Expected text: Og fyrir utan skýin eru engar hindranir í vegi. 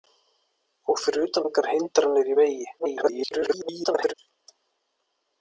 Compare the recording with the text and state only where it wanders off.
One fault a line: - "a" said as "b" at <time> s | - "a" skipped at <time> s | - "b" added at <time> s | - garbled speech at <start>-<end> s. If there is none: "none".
- "skýin eru" skipped at 1.4 s
- garbled speech at 2.8-4.1 s